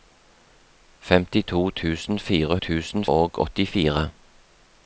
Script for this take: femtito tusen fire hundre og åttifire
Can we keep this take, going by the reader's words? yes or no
no